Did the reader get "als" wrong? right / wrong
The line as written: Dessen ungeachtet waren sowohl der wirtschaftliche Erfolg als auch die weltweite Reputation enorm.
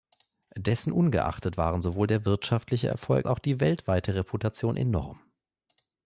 wrong